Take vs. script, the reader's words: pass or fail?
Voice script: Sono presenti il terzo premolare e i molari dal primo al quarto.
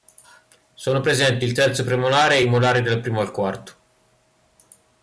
pass